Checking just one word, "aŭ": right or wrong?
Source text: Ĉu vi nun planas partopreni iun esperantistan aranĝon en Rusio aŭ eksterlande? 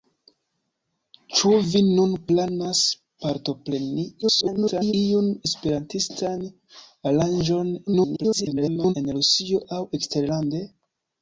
right